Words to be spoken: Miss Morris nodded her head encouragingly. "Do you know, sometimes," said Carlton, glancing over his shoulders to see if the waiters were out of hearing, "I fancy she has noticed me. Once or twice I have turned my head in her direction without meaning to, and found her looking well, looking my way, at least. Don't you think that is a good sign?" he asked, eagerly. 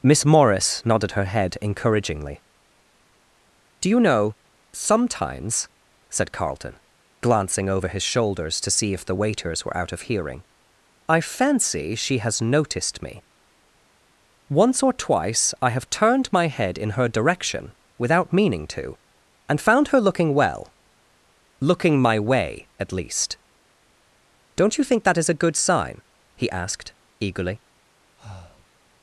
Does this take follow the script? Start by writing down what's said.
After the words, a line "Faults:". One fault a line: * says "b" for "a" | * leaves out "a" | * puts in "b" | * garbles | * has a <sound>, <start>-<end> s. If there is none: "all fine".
Miss Morris nodded her head encouragingly. "Do you know, sometimes," said Carlton, glancing over his shoulders to see if the waiters were out of hearing, "I fancy she has noticed me. Once or twice I have turned my head in her direction without meaning to, and found her looking well, looking my way, at least. Don't you think that is a good sign?" he asked, eagerly.
Faults:
* has a breath, 28.2-28.7 s